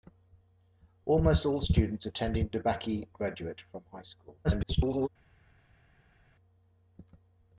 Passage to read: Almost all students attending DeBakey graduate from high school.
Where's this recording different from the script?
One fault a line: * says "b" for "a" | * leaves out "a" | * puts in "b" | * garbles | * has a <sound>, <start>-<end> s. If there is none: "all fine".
* garbles